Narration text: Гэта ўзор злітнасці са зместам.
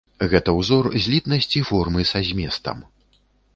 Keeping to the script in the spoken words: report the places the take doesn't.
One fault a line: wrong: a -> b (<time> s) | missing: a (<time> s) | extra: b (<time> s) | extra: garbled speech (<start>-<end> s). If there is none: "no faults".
extra: формы (1.7 s)